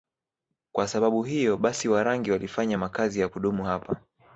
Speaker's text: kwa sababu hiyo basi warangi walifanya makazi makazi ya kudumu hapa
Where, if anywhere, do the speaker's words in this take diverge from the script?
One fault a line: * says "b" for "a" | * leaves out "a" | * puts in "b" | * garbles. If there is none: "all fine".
* leaves out "makazi"